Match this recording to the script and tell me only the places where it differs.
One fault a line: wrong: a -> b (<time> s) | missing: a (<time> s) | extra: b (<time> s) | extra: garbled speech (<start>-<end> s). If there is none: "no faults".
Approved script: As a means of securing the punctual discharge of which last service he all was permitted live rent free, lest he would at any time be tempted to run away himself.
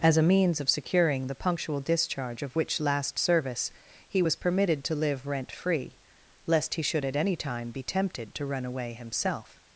missing: all (4.2 s)
extra: to (4.8 s)
wrong: would -> should (6.8 s)